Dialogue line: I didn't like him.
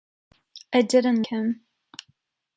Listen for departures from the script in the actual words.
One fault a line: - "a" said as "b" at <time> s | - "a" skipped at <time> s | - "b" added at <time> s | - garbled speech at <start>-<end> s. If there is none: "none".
- "like" skipped at 1.2 s